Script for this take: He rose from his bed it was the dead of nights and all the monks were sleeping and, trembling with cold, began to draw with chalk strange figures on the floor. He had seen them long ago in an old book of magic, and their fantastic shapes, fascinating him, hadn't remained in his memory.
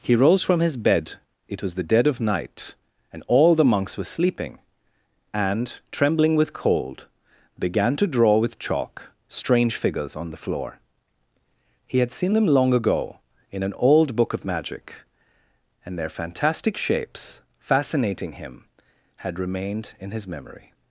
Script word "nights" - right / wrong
wrong